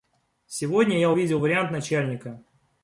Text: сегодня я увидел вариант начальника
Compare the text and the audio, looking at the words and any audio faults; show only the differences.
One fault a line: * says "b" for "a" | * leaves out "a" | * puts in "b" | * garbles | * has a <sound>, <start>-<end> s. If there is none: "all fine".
all fine